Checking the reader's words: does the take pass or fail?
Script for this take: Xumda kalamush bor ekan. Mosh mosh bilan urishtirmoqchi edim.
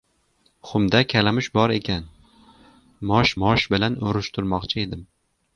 pass